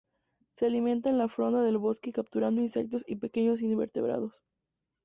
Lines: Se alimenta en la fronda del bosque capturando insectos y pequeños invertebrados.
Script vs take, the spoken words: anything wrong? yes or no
no